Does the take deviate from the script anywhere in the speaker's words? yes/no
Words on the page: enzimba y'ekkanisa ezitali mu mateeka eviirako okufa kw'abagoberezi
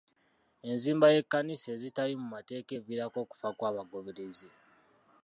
no